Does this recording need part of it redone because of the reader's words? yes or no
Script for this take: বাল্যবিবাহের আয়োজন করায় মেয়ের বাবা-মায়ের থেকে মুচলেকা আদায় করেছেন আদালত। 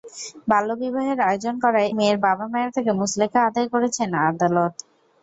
no